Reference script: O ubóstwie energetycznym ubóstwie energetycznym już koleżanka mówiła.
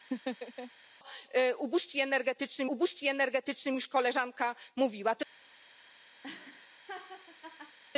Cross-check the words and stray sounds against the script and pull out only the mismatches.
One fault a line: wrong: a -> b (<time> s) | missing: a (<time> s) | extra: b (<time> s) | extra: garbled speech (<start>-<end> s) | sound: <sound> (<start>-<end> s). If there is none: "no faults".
sound: laugh (0.1-0.7 s)
sound: laugh (6.2-7.8 s)